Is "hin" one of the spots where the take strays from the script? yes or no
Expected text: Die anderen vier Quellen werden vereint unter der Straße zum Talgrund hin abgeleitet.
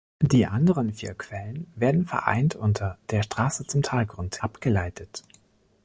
yes